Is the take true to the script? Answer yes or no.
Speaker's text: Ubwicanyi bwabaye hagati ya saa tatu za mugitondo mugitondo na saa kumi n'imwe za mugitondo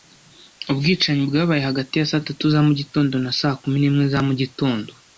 no